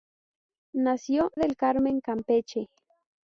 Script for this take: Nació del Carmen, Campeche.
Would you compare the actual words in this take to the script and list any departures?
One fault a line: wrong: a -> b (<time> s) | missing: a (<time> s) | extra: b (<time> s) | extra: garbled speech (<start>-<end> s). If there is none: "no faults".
no faults